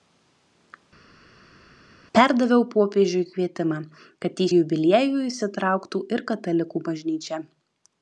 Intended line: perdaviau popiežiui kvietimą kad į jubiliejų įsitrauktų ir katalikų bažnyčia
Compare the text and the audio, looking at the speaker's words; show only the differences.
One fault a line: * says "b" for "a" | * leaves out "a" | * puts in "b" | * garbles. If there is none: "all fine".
all fine